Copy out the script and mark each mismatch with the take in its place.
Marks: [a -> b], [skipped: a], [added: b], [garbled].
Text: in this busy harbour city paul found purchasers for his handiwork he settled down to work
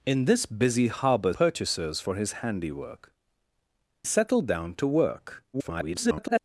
in this busy harbour [skipped: city paul found] purchasers for his handiwork [skipped: he] settled down to work [garbled]